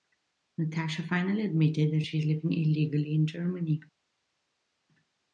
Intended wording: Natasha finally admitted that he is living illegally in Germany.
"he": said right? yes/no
no